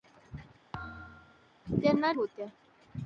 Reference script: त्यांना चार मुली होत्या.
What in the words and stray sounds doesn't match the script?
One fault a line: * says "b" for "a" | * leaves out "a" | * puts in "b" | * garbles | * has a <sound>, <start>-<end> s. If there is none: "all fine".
* has a thud, 0.7-1.5 s
* leaves out "चार मुली"